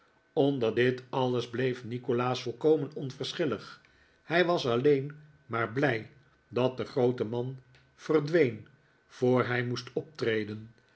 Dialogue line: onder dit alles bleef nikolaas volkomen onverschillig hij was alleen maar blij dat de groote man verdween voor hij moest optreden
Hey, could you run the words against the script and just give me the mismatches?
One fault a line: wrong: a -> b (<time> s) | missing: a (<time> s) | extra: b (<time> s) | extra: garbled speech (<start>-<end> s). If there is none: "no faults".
no faults